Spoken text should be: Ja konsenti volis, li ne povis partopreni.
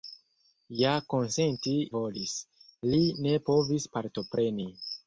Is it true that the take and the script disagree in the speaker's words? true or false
false